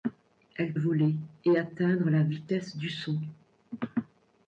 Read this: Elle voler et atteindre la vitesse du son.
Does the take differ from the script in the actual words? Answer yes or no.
no